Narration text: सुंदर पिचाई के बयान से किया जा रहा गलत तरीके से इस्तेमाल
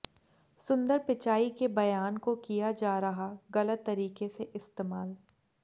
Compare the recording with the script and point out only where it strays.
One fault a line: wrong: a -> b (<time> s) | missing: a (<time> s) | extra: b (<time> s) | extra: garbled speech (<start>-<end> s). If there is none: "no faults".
wrong: से -> को (2.2 s)